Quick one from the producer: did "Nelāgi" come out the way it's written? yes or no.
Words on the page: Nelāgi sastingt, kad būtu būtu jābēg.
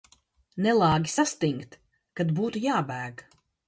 yes